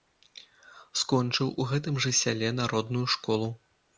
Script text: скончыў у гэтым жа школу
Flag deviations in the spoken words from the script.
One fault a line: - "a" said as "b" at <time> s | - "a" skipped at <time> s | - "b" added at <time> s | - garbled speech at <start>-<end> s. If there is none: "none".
- "сяле народную" added at 2.2 s